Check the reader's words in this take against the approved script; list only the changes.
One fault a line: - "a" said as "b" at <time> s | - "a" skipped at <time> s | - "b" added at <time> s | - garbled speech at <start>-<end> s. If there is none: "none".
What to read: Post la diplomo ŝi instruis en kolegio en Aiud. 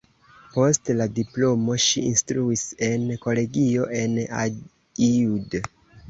none